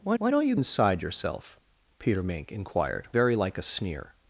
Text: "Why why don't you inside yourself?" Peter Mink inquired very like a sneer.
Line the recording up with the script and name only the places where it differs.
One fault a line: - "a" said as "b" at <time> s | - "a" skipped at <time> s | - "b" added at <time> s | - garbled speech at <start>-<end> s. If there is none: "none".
none